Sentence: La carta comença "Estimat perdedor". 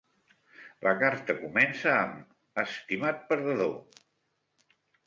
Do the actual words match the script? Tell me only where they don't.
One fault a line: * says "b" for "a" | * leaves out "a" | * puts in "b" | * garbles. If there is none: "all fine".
* puts in "amb"